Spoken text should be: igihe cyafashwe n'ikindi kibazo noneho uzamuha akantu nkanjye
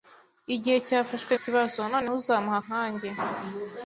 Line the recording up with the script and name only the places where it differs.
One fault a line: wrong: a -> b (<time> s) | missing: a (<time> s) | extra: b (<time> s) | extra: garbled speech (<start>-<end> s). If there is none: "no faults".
missing: n'ikindi (1.3 s)
missing: akantu (2.6 s)